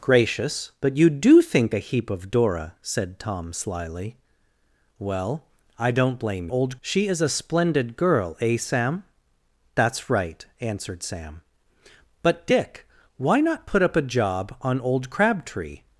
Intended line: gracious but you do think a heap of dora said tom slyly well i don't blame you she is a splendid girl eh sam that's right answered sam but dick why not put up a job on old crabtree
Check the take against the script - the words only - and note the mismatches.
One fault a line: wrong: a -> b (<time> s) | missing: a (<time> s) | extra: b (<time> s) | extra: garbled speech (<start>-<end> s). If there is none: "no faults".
wrong: you -> old (6.5 s)